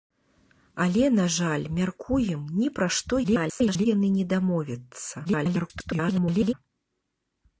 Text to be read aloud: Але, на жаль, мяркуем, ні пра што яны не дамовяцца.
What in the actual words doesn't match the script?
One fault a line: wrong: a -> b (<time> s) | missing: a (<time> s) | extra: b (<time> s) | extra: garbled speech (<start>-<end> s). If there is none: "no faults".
extra: garbled speech (3.2-3.9 s)
extra: garbled speech (5.2-6.5 s)